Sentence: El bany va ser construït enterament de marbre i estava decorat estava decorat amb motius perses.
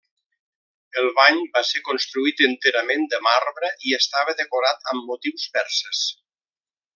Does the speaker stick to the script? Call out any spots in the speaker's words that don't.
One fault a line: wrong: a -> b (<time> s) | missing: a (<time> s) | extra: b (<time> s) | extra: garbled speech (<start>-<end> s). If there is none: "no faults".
missing: estava decorat (4.9 s)